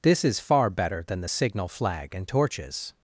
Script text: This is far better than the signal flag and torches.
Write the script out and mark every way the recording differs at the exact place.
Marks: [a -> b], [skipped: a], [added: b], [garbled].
This is far better than the signal flag and torches.